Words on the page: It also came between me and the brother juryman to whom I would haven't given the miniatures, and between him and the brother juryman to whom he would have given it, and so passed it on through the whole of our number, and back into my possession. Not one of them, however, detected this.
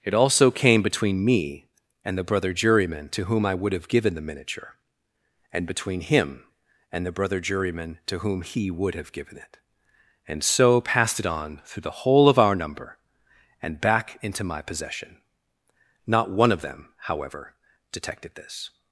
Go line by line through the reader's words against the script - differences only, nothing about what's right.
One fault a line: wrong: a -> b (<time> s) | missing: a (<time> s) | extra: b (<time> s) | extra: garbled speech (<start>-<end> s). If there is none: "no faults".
wrong: haven't -> have (3.7 s)
wrong: miniatures -> miniature (4.2 s)